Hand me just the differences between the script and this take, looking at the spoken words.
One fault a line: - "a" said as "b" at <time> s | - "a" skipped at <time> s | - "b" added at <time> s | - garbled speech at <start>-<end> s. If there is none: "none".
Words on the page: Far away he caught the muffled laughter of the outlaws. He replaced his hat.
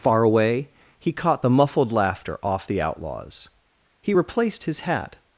- "of" said as "off" at 2.4 s